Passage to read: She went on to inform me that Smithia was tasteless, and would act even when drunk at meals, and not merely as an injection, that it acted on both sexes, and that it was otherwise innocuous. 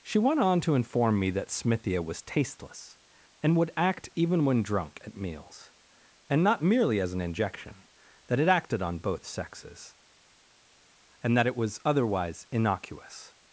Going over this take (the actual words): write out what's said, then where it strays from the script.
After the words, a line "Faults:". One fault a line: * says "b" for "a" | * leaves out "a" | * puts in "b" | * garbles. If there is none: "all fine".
She went on to inform me that Smithia was tasteless, and would act even when drunk at meals, and not merely as an injection, that it acted on both sexes, and that it was otherwise innocuous.
Faults:
all fine